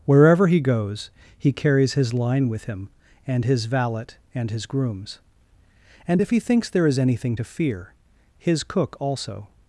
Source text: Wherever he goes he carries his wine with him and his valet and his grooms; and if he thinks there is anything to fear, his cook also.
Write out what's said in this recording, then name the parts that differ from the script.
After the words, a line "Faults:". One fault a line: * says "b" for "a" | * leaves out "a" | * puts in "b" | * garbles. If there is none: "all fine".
Wherever he goes he carries his line with him and his valet and his grooms; and if he thinks there is anything to fear, his cook also.
Faults:
* says "line" for "wine"